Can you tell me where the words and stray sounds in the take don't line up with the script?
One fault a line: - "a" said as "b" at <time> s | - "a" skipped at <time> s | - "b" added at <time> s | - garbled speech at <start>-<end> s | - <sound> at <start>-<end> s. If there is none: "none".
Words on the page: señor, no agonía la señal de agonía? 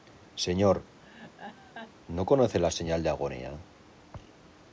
- laugh at 1.0-1.9 s
- "agonía" said as "conoce" at 2.2 s